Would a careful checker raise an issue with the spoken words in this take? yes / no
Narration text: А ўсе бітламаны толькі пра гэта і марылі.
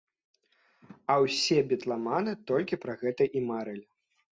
no